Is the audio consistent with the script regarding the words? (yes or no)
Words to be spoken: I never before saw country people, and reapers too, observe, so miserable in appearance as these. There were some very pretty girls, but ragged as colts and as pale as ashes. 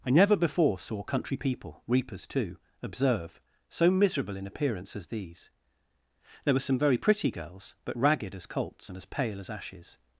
no